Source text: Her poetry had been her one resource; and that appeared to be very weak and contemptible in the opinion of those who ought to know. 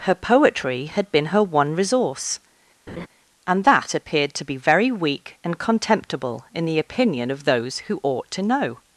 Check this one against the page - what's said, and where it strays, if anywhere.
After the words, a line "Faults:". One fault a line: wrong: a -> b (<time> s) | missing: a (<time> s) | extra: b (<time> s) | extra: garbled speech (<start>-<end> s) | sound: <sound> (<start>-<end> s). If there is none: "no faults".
Her poetry had been her one resource; and that appeared to be very weak and contemptible in the opinion of those who ought to know.
Faults:
sound: laugh (2.9-3.1 s)